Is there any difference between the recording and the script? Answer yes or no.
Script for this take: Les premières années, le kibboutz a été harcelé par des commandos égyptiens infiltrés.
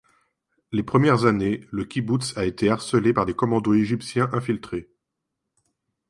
no